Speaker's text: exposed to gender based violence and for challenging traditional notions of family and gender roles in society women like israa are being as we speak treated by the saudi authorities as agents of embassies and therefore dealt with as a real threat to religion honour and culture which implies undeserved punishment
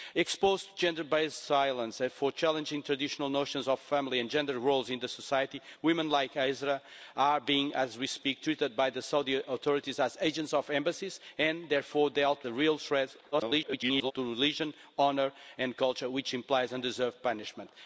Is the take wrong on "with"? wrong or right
wrong